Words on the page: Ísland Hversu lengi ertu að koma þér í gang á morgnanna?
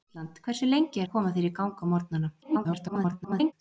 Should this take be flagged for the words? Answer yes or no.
yes